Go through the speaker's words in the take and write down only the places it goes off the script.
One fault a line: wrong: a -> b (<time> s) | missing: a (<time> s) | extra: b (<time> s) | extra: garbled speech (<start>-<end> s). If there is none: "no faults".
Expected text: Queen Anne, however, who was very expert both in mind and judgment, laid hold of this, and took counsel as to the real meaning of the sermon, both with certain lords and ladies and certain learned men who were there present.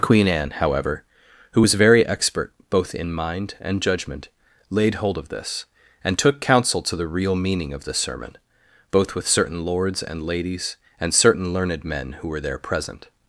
missing: as (6.8 s)